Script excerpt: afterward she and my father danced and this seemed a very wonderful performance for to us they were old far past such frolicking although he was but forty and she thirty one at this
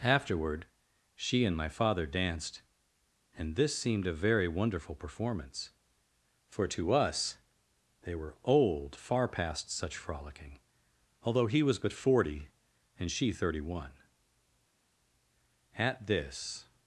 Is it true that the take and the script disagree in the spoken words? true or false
false